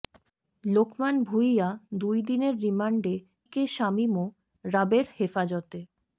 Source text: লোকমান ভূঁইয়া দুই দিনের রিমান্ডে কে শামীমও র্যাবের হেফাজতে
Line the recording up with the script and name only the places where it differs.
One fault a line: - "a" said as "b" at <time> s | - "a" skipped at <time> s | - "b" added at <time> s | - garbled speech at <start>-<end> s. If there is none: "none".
none